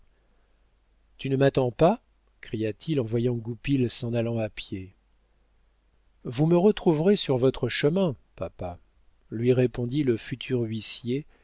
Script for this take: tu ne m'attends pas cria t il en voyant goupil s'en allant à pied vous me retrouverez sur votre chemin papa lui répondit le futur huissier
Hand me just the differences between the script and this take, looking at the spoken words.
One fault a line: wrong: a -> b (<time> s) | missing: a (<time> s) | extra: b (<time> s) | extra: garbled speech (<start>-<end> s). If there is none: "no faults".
no faults